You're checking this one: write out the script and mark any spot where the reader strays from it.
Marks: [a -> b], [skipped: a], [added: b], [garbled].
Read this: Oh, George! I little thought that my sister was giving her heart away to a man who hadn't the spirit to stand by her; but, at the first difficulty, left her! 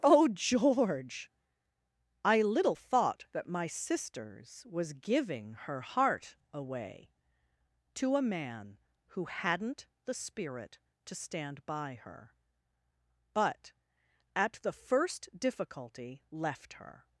Oh, George! I little thought that my [sister -> sisters] was giving her heart away to a man who hadn't the spirit to stand by her; but, at the first difficulty, left her!